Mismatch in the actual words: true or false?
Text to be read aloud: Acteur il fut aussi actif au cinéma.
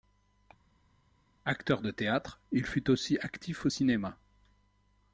true